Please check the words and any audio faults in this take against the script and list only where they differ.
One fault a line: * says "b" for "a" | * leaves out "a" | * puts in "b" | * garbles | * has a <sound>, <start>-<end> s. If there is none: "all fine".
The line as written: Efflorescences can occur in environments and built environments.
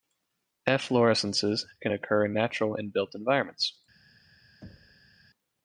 * says "natural" for "environments"
* has a thud, 4.6-5.1 s